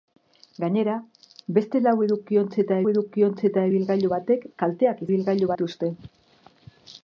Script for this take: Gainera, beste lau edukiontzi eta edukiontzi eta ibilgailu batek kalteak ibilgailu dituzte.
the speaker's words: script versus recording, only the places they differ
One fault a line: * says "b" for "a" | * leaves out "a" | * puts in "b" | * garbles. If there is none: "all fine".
all fine